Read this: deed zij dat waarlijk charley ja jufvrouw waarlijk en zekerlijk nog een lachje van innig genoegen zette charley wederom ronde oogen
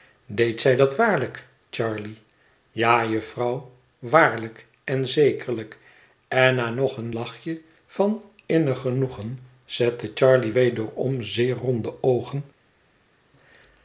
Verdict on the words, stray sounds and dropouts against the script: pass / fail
fail